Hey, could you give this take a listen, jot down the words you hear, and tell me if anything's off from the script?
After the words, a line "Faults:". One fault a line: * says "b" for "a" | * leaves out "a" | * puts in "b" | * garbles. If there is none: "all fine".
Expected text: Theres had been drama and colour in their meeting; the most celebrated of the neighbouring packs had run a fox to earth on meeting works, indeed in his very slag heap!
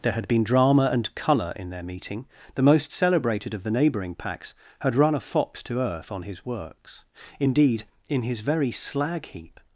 There had been drama and colour in their meeting; the most celebrated of the neighbouring packs had run a fox to earth on his works, indeed in his very slag heap!
Faults:
* says "There" for "Theres"
* says "his" for "meeting"